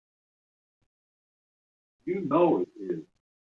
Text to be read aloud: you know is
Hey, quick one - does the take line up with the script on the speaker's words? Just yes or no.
no